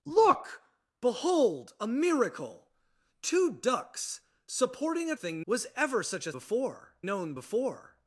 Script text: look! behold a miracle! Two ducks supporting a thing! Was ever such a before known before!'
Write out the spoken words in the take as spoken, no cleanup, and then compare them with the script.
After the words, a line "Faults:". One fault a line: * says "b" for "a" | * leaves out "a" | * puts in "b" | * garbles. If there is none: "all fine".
look! behold a miracle! Two ducks supporting a thing! Was ever such a before known before!'
Faults:
all fine